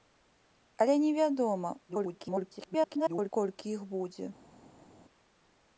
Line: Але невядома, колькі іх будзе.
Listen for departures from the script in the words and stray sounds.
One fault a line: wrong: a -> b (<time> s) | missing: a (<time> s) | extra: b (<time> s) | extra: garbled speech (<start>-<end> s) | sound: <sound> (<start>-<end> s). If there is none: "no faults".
extra: garbled speech (1.9-3.3 s)